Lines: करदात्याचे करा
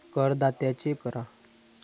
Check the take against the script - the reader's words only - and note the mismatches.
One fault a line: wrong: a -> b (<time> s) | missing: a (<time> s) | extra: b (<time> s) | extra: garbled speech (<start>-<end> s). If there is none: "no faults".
no faults